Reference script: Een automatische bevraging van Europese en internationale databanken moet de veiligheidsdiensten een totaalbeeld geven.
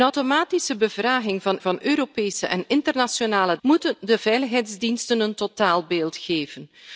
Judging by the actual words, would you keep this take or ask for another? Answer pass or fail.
fail